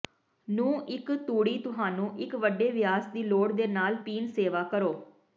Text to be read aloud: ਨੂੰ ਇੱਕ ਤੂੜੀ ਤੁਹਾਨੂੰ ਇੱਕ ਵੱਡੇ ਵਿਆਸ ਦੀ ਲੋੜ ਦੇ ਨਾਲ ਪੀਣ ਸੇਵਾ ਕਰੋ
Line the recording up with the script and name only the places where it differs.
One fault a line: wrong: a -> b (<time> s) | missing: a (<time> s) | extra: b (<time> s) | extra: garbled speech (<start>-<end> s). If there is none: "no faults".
no faults